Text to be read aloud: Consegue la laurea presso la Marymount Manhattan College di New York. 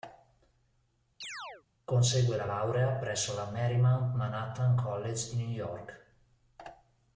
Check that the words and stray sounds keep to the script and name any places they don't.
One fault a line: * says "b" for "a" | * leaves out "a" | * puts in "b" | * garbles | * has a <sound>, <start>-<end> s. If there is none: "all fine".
* has a chirp, 1.2-1.6 s